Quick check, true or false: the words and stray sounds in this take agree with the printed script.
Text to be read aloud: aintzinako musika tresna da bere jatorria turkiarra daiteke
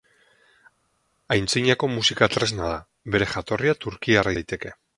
true